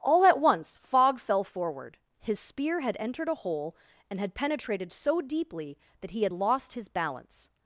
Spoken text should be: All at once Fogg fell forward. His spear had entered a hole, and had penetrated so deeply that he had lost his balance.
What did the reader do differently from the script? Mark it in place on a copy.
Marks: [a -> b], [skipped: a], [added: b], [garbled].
All at once Fogg fell forward. His spear had entered a hole, and had penetrated so deeply that he had lost his balance.